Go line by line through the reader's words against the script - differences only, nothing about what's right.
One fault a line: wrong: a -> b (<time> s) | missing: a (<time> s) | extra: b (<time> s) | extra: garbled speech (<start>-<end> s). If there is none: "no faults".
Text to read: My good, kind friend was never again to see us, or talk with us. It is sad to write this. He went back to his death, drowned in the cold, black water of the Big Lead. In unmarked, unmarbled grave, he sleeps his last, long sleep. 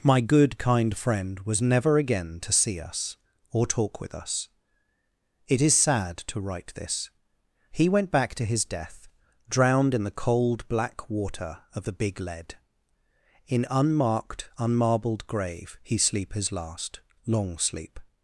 wrong: sleeps -> sleep (16.0 s)